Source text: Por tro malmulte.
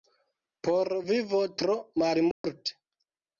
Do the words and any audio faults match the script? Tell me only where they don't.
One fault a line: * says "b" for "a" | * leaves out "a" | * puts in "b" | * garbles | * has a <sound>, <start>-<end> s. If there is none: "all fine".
* puts in "vivo"
* has a dropout, 2.3-2.4 s